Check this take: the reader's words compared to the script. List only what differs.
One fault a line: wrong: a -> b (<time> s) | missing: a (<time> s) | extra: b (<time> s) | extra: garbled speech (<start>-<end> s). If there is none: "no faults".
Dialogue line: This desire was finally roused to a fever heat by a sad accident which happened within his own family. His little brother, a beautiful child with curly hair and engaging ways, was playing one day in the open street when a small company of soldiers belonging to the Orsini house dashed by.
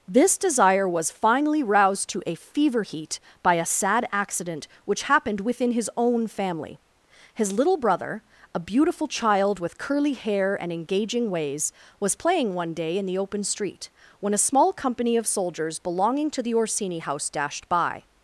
no faults